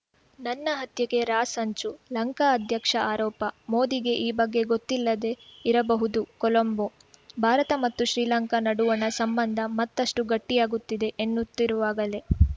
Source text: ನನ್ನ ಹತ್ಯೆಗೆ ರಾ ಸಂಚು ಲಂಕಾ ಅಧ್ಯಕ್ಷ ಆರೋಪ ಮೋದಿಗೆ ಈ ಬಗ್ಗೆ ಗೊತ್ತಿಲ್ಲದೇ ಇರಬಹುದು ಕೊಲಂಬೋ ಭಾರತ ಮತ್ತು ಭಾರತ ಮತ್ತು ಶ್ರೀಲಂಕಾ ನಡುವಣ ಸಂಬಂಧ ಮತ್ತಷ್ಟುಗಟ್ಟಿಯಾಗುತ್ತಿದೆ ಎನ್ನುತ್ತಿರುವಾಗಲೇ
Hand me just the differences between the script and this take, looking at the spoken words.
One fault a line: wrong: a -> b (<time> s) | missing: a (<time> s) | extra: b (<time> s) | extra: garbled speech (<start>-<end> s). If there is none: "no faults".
missing: ಭಾರತ ಮತ್ತು (8.1 s)